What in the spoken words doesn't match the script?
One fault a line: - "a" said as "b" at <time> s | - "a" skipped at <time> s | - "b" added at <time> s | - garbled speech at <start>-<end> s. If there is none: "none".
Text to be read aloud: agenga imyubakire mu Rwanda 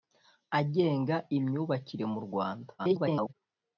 - garbled speech at 2.8-3.3 s